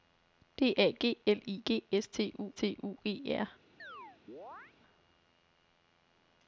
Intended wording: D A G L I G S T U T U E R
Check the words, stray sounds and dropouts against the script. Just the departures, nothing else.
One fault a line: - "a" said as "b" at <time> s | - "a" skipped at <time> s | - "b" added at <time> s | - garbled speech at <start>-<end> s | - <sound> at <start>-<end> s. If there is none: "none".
- chirp at 3.8-4.8 s